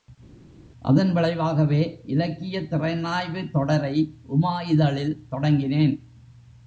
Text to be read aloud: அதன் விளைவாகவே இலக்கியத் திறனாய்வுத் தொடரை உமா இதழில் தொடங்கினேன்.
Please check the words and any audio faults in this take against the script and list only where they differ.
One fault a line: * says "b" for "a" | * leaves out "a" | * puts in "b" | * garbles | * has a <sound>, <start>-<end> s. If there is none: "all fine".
all fine